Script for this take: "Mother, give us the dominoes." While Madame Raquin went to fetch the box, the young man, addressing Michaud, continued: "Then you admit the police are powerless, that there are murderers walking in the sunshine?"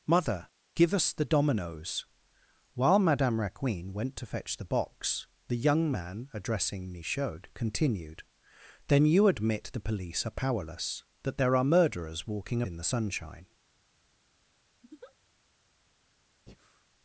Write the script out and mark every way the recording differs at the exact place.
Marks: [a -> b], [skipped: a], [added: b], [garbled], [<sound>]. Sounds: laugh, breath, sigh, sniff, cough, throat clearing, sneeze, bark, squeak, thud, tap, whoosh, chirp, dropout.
"Mother, give us the dominoes." While Madame Raquin went to fetch the box, the young man, addressing Michaud, continued: "Then you admit the police are powerless, that there are murderers walking in the sunshine?" [laugh] [breath]